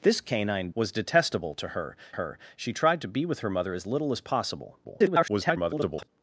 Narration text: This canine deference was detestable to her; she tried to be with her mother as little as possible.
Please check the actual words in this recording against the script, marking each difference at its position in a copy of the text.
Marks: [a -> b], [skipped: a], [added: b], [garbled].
This canine [skipped: deference] was detestable to her; [added: her] she tried to be with her mother as little as possible. [garbled]